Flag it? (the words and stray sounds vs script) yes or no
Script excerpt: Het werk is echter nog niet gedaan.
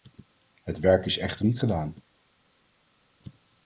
yes